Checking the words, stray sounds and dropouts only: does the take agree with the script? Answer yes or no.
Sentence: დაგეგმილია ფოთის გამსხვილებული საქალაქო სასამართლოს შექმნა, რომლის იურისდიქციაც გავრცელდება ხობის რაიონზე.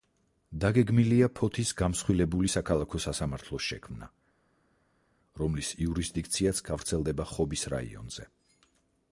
yes